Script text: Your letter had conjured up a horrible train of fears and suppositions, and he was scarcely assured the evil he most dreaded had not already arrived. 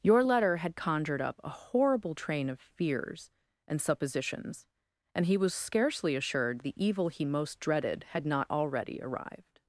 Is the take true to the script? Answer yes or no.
yes